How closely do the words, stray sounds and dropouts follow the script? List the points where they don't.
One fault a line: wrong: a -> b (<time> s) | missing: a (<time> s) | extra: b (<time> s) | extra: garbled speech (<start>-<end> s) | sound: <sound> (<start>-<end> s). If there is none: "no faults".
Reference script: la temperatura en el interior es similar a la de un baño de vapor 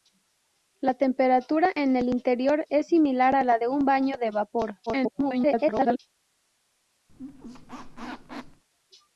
extra: garbled speech (4.9-6.0 s)
sound: squeak (7.1-8.6 s)